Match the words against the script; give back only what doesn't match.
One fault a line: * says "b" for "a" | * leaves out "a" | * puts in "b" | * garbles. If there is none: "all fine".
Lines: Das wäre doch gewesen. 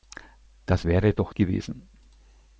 all fine